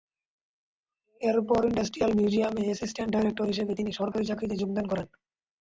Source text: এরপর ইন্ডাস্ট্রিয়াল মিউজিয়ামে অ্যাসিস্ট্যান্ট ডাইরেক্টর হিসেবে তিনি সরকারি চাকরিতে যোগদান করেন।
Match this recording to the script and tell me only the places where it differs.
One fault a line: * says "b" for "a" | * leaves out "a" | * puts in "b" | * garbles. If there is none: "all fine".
all fine